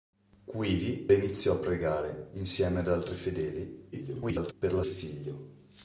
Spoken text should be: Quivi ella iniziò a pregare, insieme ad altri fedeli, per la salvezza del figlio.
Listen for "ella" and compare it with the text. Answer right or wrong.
wrong